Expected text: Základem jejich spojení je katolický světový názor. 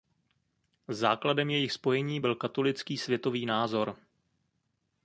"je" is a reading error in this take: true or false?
true